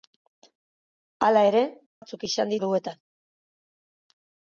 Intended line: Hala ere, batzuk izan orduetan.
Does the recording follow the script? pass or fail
pass